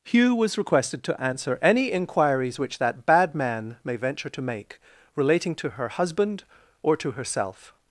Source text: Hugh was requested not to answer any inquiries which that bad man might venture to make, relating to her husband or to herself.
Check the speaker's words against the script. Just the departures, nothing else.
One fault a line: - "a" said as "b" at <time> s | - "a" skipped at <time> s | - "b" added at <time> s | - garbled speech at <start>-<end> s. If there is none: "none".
- "not" skipped at 1.0 s
- "might" said as "may" at 3.8 s